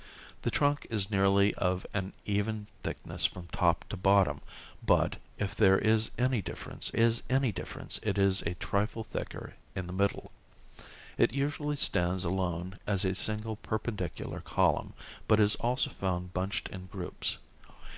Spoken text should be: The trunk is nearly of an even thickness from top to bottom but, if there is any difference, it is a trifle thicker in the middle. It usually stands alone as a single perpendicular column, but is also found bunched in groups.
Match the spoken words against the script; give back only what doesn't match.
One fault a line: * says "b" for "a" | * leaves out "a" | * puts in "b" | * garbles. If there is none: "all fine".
* puts in "is any difference"